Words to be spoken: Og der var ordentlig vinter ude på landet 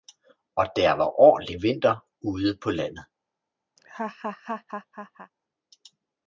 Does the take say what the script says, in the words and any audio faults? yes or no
no